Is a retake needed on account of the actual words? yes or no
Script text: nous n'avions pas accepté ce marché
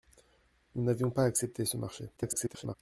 yes